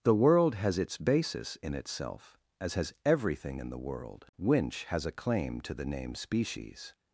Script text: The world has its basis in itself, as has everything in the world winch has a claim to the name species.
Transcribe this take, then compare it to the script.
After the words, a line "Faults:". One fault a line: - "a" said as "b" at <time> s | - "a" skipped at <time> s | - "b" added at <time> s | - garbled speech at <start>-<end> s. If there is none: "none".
The world has its basis in itself, as has everything in the world winch has a claim to the name species.
Faults:
none